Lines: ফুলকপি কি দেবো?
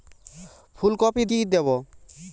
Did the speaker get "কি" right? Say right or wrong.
right